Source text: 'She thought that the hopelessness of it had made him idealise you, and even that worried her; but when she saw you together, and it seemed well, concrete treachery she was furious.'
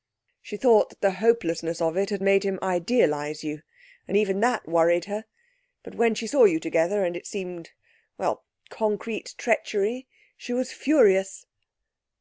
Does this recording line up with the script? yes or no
yes